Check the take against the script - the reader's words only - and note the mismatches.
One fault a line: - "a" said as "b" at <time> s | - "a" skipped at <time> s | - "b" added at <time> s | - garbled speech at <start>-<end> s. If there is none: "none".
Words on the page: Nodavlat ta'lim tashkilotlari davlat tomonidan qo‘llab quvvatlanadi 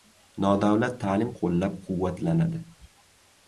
- "tashkilotlari davlat tomonidan" skipped at 1.3 s